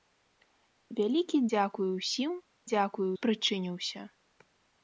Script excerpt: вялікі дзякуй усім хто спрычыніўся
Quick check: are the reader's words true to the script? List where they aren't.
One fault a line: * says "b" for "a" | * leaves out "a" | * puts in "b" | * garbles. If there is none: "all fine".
* says "дзякуй" for "хто"